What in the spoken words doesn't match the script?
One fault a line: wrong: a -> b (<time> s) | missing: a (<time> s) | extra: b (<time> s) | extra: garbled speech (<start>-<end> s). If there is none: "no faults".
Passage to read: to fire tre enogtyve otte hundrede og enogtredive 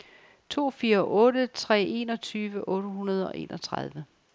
extra: otte (1.0 s)